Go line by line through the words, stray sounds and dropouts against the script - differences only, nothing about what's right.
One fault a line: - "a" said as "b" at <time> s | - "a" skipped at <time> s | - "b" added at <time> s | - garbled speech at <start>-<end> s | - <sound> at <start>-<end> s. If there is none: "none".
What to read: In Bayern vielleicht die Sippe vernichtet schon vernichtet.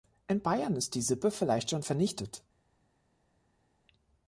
- "vielleicht" said as "ist" at 0.8 s
- "vernichtet" said as "vielleicht" at 1.3 s